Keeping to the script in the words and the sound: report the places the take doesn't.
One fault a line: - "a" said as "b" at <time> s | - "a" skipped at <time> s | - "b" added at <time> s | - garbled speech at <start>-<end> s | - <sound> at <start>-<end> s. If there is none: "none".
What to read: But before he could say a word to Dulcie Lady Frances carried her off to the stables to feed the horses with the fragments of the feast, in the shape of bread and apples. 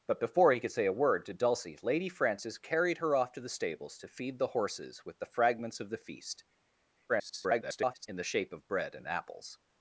- garbled speech at 7.1-8.1 s